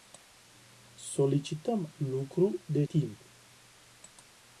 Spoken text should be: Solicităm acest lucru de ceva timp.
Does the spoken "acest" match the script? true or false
false